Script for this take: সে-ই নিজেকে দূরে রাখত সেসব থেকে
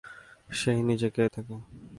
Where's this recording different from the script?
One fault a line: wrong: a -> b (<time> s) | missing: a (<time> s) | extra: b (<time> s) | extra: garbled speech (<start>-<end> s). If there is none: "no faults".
missing: দূরে রাখত সেসব (1.2 s)